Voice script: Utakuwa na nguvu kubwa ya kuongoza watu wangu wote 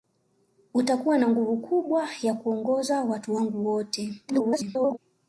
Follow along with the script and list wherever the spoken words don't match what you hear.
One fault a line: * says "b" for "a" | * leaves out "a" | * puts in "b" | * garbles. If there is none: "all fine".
* garbles